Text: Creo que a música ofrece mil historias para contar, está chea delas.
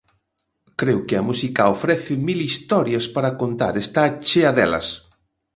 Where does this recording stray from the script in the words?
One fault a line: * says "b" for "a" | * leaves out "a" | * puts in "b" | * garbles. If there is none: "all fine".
all fine